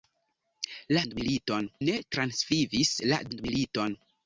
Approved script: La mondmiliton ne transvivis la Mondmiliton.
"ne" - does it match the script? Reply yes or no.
yes